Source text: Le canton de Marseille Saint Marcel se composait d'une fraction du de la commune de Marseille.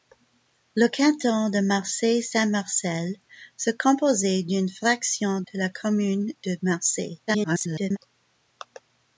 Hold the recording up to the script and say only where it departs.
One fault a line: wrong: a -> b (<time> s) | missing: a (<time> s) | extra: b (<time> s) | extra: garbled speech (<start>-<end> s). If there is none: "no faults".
missing: du (5.4 s)
extra: garbled speech (7.3-8.0 s)